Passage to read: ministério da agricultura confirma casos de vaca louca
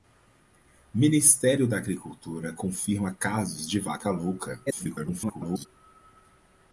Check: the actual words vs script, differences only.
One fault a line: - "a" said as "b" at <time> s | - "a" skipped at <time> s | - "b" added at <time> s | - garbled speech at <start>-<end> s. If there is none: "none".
- garbled speech at 4.7-5.7 s